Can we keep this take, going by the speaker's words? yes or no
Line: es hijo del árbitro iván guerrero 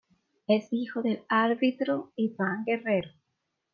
yes